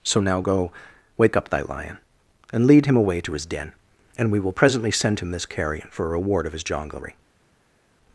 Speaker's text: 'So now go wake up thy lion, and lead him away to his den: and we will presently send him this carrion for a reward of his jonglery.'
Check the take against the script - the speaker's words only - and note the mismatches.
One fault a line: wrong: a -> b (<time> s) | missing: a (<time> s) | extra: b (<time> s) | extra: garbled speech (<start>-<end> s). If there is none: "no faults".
no faults